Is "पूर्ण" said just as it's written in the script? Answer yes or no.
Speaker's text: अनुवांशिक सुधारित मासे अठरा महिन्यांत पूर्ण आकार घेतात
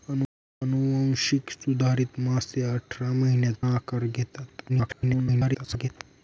no